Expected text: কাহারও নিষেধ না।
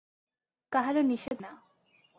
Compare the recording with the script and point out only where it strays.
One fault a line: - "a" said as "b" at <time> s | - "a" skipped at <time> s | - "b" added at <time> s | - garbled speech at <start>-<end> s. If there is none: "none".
none